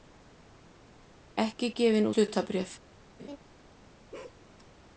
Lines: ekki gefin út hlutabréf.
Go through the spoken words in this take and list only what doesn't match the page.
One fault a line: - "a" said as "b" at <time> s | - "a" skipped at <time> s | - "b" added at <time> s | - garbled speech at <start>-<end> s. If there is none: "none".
- "út" skipped at 2.1 s